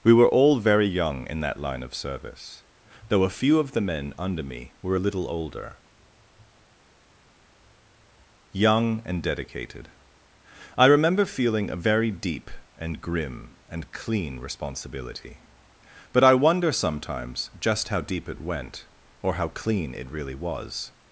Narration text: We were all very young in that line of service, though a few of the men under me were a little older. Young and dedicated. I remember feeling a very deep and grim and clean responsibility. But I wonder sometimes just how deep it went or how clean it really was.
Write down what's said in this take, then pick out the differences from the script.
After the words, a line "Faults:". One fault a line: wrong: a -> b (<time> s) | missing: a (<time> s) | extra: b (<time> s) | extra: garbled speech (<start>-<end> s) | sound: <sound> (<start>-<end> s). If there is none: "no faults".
We were all very young in that line of service, though a few of the men under me were a little older. Young and dedicated. I remember feeling a very deep and grim and clean responsibility. But I wonder sometimes just how deep it went or how clean it really was.
Faults:
no faults